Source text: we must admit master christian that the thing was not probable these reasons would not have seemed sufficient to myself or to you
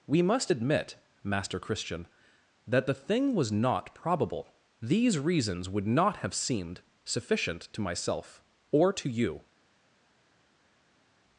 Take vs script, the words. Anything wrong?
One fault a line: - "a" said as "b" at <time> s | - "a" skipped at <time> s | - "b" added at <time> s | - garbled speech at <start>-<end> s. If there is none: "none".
none